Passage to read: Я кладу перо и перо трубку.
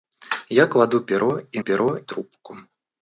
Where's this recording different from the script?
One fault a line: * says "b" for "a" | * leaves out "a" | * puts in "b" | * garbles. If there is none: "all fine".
all fine